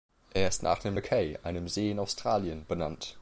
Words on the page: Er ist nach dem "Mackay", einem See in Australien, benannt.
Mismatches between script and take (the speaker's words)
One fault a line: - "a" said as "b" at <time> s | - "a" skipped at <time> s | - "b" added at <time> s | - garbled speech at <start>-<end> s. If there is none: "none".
none